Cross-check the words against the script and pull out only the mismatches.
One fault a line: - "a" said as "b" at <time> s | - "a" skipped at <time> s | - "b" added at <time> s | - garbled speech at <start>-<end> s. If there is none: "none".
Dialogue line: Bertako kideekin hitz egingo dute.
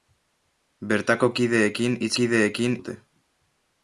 - "egingo" said as "kideekin" at 2.2 s